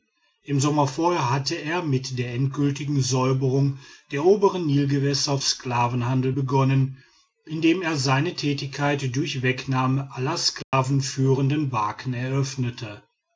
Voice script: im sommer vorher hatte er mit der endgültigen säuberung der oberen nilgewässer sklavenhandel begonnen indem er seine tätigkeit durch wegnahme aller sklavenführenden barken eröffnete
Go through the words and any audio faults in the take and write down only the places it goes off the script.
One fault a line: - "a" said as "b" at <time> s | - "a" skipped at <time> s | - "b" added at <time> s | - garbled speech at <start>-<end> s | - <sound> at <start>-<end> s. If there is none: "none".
- dropout at 10.6-10.7 s